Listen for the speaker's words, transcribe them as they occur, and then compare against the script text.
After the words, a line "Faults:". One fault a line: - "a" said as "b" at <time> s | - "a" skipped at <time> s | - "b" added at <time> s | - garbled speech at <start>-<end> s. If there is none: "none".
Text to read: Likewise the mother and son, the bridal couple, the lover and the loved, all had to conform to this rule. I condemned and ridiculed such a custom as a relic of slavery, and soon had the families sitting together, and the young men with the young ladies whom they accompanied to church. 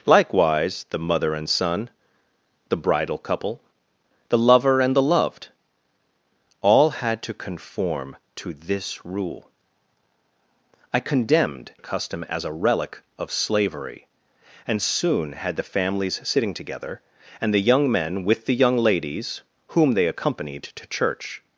Likewise the mother and son, the bridal couple, the lover and the loved, all had to conform to this rule. I condemned a custom as a relic of slavery, and soon had the families sitting together, and the young men with the young ladies whom they accompanied to church.
Faults:
- "and ridiculed such" skipped at 11.7 s